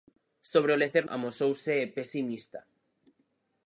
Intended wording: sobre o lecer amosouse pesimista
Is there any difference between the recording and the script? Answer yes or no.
no